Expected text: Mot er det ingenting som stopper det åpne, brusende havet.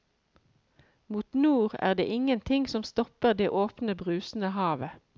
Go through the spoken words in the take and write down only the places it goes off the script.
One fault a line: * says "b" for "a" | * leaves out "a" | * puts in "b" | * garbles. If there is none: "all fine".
* puts in "nord"